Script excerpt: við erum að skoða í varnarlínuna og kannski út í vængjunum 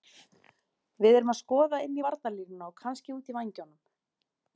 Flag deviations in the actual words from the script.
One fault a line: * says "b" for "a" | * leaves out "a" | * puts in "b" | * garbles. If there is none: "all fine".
* puts in "inn"